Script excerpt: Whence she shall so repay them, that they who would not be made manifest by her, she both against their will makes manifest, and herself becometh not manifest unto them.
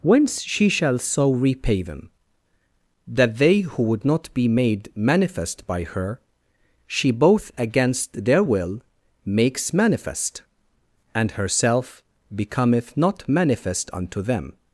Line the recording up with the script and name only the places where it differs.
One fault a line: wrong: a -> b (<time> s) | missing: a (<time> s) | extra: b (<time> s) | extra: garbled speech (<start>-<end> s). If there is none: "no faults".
no faults